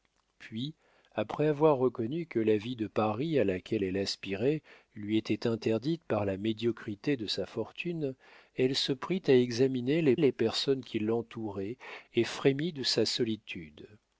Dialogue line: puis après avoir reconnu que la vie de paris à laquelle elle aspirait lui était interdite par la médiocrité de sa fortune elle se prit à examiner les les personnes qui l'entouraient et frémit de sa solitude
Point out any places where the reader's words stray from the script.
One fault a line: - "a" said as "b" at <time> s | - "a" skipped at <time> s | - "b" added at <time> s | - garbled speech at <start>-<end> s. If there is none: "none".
none